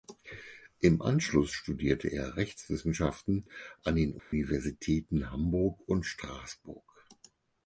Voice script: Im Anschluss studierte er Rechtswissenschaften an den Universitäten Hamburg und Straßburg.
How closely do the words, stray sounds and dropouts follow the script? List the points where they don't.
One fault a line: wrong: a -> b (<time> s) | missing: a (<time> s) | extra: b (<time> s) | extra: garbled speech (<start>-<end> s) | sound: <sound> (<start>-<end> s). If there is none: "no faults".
sound: dropout (4.2-4.3 s)